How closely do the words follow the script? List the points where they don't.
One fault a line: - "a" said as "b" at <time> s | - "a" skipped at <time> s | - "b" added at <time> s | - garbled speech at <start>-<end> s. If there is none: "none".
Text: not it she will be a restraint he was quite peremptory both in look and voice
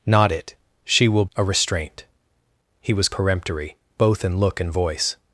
- "be" skipped at 1.2 s
- "quite" skipped at 3.1 s